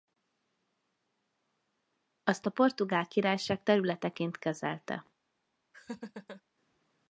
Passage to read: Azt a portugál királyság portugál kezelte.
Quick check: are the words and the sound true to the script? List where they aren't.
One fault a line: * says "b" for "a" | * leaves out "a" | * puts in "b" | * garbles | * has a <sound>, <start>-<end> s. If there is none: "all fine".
* says "területeként" for "portugál"
* has a laugh, 5.7-6.4 s